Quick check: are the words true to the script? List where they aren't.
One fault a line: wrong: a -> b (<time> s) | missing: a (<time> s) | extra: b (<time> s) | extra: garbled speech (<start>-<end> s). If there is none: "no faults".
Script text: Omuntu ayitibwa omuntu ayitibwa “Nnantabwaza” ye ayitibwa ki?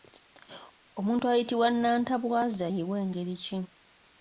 missing: omuntu ayitibwa (1.7 s)
wrong: ayitibwa -> w'engeri (2.9 s)